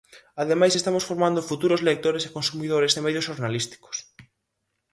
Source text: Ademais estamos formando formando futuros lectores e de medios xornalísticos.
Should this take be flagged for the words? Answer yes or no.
yes